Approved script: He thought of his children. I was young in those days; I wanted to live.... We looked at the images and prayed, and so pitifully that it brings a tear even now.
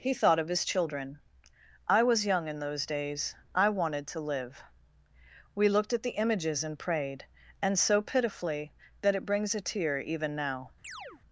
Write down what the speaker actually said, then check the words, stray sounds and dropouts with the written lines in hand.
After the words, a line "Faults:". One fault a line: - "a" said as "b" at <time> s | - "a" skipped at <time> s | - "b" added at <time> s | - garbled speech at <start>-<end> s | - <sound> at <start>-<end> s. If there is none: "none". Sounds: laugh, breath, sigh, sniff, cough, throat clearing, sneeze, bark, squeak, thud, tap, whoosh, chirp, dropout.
He thought of his children. I was young in those days; I wanted to live.... We looked at the images and prayed, and so pitifully that it brings a tear even now.
Faults:
- chirp at 10.8-11.2 s